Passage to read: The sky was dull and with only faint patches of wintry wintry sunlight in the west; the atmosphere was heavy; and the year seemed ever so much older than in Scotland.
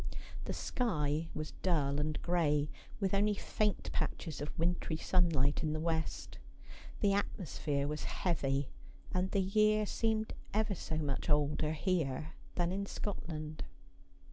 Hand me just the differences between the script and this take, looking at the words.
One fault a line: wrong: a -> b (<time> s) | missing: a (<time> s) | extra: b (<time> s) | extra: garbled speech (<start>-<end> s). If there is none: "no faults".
extra: gray (2.2 s)
missing: wintry (5.0 s)
extra: here (11.7 s)